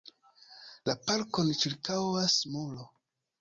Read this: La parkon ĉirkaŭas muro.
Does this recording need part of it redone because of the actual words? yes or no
no